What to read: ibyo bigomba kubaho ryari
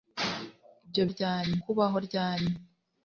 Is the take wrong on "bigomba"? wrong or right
wrong